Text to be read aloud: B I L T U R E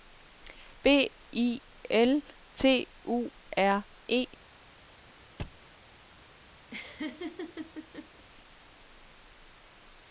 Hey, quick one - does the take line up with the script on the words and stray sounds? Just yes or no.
no